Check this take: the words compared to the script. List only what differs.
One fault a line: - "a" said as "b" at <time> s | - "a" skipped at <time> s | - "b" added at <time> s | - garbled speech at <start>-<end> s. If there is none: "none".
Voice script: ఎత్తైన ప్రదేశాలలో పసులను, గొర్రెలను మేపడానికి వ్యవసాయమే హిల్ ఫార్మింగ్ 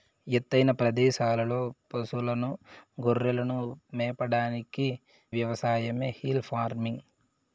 none